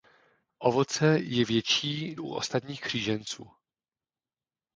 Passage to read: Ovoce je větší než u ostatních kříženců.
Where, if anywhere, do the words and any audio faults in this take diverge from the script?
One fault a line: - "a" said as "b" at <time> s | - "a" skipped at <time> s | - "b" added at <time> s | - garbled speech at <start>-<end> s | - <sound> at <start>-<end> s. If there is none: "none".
- "než" skipped at 2.1 s